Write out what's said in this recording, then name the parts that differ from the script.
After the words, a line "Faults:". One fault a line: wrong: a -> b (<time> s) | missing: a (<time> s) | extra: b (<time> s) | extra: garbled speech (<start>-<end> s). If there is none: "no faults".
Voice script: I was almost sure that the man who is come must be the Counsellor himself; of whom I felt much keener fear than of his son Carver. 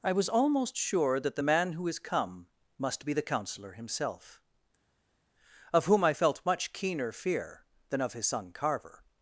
I was almost sure that the man who is come must be the Counsellor himself; of whom I felt much keener fear than of his son Carver.
Faults:
no faults